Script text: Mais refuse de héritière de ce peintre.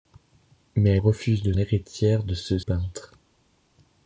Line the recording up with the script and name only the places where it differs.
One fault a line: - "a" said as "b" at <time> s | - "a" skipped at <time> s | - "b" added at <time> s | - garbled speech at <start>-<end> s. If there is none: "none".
none